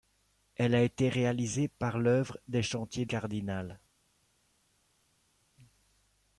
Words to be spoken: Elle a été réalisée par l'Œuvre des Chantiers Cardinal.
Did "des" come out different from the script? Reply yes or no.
no